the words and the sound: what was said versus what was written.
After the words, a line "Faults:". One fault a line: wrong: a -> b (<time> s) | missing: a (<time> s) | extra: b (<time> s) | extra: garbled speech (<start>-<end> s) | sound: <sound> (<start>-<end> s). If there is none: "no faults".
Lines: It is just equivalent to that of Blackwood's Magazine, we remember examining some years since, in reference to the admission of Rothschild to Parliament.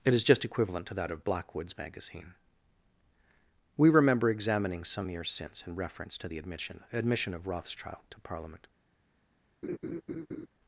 It is just equivalent to that of Blackwood's Magazine, we remember examining some years since, in reference to the admission admission of Rothschild to Parliament.
Faults:
extra: admission (6.9 s)
sound: laugh (9.6-10.5 s)